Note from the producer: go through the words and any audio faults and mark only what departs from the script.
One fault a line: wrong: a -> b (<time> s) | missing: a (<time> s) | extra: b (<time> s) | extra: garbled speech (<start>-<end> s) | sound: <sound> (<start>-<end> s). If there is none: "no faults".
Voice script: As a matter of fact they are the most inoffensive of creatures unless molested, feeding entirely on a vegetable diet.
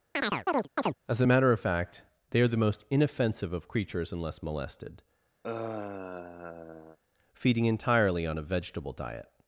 sound: chirp (0.1-1.0 s)
sound: sigh (5.4-7.0 s)